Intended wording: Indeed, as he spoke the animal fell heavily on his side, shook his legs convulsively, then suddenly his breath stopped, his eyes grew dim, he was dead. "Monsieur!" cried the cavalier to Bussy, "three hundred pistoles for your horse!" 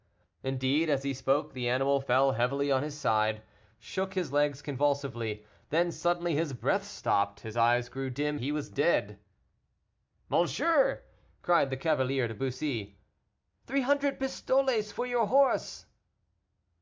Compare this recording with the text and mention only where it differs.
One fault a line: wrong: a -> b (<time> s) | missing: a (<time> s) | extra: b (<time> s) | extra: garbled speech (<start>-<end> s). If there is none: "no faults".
no faults